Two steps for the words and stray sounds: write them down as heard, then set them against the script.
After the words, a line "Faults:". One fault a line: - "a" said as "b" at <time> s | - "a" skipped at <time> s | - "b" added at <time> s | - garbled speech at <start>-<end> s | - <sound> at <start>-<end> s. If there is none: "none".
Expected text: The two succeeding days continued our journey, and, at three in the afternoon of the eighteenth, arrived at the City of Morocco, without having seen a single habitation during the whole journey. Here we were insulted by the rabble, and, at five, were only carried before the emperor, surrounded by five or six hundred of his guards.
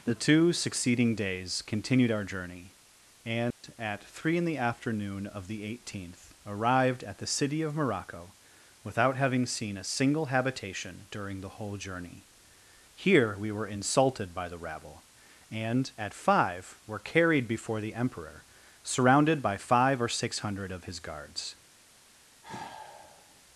The two succeeding days continued our journey, and, at three in the afternoon of the eighteenth, arrived at the City of Morocco, without having seen a single habitation during the whole journey. Here we were insulted by the rabble, and, at five, were carried before the emperor, surrounded by five or six hundred of his guards.
Faults:
- dropout at 3.5-3.6 s
- "only" skipped at 17.0 s
- sigh at 22.4-23.4 s